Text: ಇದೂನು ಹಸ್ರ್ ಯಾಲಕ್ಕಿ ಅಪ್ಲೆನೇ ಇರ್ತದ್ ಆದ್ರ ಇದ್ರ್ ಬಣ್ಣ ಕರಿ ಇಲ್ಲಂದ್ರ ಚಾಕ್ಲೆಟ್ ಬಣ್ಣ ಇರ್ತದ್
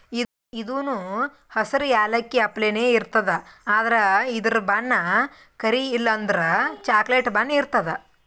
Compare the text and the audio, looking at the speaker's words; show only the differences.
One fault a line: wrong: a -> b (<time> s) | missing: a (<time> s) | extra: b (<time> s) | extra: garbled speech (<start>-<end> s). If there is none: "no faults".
no faults